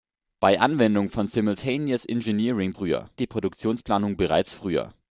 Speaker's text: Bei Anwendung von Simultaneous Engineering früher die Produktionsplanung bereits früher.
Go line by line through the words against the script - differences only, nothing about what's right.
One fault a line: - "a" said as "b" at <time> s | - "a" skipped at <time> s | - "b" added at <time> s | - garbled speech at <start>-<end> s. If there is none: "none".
none